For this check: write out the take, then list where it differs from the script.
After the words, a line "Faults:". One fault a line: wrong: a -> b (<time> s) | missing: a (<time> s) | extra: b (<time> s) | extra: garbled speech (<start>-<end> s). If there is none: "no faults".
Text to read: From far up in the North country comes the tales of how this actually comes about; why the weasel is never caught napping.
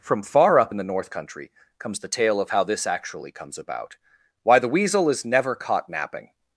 From far up in the North country comes the tale of how this actually comes about; why the weasel is never caught napping.
Faults:
wrong: tales -> tale (2.1 s)